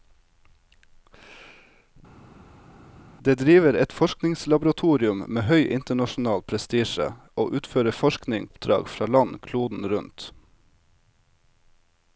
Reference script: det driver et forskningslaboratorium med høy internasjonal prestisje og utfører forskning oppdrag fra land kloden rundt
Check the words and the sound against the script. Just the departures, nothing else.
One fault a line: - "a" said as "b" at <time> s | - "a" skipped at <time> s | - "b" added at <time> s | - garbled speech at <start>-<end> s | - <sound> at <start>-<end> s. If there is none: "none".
none